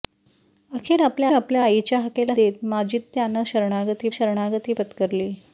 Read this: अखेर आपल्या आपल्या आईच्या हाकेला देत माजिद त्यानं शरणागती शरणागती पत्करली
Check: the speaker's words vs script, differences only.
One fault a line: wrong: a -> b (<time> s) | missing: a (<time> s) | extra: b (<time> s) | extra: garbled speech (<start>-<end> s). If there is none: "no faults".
no faults